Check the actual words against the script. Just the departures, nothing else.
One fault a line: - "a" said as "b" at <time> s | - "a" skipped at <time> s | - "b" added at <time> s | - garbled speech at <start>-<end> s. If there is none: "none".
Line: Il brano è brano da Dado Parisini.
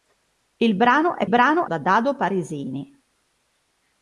none